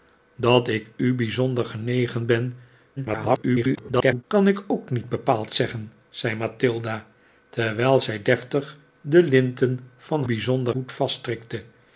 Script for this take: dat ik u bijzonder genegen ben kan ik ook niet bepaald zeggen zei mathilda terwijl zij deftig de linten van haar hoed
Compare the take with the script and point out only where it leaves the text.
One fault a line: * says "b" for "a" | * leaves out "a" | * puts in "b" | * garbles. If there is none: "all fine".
* garbles
* says "bijzonder" for "haar"